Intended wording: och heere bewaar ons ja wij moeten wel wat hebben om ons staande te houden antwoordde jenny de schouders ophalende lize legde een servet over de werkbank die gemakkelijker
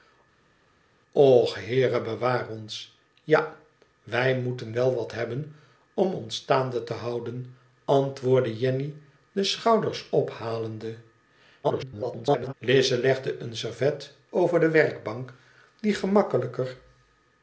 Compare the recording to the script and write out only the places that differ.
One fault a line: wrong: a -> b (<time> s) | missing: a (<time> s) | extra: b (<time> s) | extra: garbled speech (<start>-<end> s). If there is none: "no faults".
extra: garbled speech (11.6-12.5 s)